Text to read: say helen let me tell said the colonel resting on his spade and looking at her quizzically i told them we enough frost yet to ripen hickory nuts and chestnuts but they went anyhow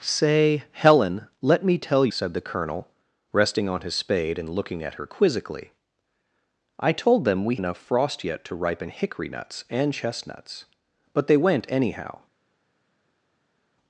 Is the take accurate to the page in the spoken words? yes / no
yes